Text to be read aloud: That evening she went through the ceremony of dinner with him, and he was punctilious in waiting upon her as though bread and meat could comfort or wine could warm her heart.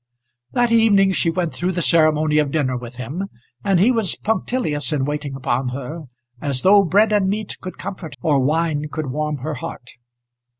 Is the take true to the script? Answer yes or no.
yes